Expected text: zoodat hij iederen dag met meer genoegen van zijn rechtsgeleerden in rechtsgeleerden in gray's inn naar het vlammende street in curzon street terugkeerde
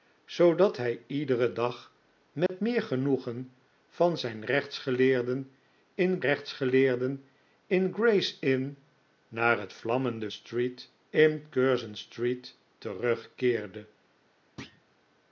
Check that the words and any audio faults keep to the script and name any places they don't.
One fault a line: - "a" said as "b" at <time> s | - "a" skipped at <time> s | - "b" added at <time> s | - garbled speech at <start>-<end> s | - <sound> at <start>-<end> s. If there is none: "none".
- dropout at 2.5-2.5 s
- thud at 14.6-14.8 s